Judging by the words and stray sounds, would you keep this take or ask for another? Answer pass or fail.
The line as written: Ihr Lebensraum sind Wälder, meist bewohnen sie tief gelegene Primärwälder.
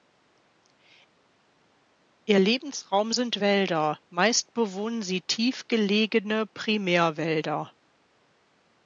pass